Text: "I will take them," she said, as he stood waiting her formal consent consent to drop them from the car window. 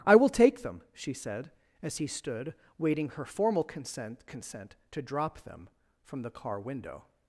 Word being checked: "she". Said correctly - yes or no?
yes